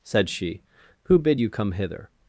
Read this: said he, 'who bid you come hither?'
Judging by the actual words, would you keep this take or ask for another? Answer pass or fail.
fail